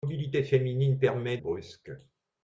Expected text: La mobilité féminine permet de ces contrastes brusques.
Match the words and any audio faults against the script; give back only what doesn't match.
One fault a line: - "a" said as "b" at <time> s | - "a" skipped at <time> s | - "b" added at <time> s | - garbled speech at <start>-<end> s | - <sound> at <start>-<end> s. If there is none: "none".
- "de ces contrastes" skipped at 1.4 s